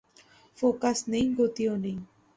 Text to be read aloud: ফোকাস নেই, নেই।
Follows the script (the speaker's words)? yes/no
no